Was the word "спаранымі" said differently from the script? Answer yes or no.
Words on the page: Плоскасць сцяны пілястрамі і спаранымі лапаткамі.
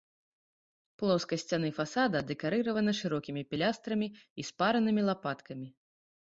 no